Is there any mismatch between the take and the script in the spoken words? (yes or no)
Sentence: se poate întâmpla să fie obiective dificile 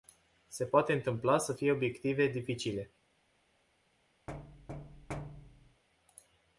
no